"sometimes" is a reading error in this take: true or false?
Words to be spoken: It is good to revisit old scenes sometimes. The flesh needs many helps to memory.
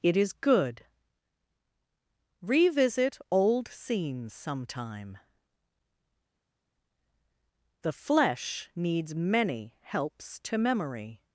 true